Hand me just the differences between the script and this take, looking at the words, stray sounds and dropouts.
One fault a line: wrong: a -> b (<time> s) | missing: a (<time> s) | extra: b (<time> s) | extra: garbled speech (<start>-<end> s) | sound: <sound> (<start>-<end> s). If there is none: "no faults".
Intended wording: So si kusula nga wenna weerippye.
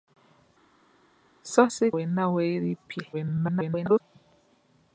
missing: kusula nga (1.9 s)
extra: garbled speech (3.1-4.0 s)